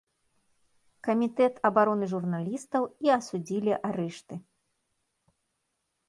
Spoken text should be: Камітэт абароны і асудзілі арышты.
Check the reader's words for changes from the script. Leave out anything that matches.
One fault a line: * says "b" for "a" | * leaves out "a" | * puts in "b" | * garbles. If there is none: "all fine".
* puts in "журналістаў"